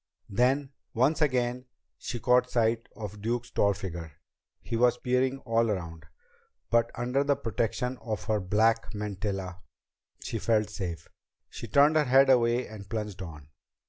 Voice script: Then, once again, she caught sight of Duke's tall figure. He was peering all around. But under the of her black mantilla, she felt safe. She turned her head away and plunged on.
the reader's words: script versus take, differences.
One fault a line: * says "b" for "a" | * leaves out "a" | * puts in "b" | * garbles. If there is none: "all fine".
* puts in "protection"